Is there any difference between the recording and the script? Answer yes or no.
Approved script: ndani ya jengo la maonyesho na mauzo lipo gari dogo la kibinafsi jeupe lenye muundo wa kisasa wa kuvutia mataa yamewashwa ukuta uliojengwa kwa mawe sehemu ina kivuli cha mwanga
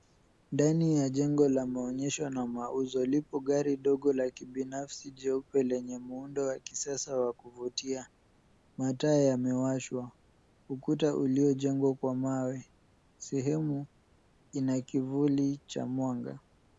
no